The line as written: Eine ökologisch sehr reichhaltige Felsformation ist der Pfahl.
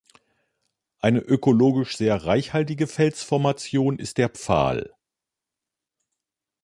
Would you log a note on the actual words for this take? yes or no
no